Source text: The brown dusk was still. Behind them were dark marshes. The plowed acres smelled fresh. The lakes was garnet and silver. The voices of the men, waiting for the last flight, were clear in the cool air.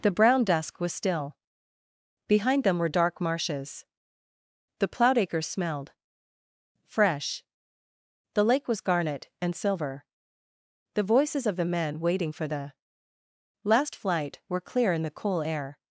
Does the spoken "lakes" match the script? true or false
false